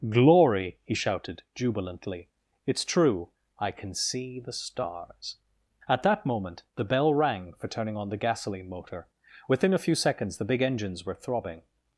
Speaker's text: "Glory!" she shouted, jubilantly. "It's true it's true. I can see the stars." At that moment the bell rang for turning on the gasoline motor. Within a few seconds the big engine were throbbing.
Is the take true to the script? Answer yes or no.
no